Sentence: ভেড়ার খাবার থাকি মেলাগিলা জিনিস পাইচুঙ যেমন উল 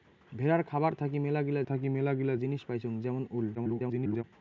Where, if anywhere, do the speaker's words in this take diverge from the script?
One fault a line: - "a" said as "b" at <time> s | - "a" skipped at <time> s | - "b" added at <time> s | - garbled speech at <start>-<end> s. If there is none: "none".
- "থাকি মেলাগিলা" added at 1.6 s
- garbled speech at 3.5-4.2 s